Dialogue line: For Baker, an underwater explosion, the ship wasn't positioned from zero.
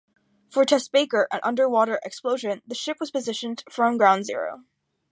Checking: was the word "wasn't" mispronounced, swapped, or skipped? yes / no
yes